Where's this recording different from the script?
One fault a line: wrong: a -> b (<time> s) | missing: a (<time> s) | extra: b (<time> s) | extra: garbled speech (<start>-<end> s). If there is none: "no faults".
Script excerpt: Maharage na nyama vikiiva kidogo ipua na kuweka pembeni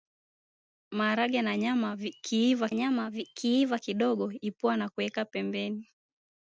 extra: nyama vikiiva (2.7 s)